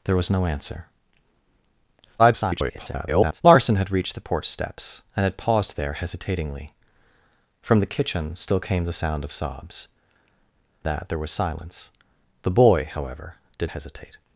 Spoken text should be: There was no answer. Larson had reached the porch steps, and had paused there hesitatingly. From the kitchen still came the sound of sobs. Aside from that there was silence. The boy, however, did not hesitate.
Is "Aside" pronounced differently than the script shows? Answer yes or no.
yes